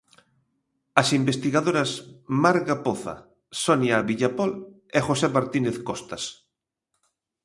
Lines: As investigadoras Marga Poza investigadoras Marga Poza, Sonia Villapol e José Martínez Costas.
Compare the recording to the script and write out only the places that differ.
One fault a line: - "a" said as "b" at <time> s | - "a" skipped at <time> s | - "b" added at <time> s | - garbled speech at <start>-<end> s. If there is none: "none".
- "investigadoras Marga Poza" skipped at 3.1 s